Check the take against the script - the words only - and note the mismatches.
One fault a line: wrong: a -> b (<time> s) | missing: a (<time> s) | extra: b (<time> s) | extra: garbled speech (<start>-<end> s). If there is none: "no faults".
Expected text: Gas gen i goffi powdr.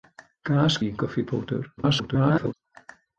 missing: gen (0.8 s)
extra: garbled speech (1.8-2.5 s)